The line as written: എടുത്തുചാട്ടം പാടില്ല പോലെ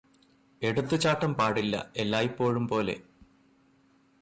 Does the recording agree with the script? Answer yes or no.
no